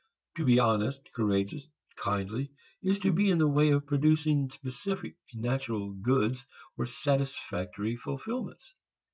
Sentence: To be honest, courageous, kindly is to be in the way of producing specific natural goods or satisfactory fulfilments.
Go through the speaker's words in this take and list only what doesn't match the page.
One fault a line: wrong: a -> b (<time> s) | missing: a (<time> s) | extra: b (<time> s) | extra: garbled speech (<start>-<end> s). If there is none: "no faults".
no faults